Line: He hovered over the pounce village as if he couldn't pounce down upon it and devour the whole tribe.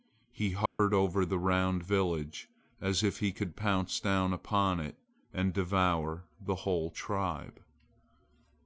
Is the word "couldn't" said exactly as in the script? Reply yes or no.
no